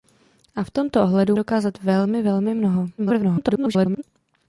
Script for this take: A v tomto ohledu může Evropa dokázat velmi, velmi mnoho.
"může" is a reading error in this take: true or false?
true